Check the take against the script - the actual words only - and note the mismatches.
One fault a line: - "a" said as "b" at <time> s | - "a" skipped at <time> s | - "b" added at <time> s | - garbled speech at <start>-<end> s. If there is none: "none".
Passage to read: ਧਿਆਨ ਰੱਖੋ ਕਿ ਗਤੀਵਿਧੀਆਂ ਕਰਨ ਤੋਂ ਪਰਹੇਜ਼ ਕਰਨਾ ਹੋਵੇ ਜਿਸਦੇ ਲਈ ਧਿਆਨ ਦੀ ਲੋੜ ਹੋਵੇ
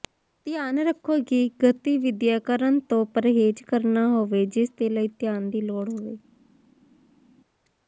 none